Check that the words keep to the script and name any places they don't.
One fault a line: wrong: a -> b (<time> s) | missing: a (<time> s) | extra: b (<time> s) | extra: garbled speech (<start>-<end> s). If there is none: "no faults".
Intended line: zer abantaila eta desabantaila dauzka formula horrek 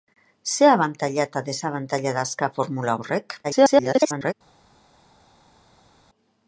extra: garbled speech (3.4-4.3 s)